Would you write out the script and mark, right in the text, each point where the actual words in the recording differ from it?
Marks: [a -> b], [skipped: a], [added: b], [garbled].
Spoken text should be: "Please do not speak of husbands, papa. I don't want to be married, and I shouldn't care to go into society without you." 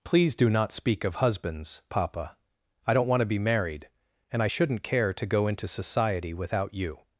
"Please do not speak of husbands, papa. I don't want to be married, and I shouldn't care to go into society without you."